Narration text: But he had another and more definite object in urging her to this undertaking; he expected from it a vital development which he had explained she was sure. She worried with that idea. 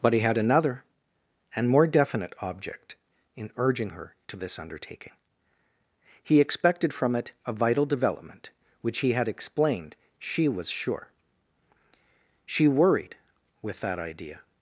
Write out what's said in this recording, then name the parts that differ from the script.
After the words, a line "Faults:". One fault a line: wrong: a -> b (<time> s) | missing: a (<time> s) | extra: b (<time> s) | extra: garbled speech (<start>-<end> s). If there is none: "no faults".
But he had another and more definite object in urging her to this undertaking; he expected from it a vital development which he had explained she was sure. She worried with that idea.
Faults:
no faults